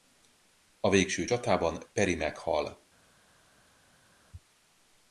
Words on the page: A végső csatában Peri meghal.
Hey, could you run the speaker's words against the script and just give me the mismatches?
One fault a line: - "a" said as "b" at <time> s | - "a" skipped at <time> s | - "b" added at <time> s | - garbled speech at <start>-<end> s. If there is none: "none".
none